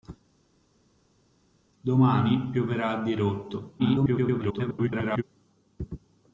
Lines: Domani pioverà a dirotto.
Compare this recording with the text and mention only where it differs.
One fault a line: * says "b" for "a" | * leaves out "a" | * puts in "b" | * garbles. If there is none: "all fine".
* garbles